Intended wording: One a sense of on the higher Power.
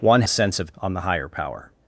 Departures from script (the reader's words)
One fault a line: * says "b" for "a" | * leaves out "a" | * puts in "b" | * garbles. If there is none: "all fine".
all fine